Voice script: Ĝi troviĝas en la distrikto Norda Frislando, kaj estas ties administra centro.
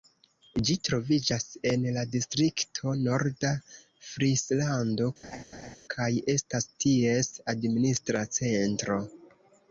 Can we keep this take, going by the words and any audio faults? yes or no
no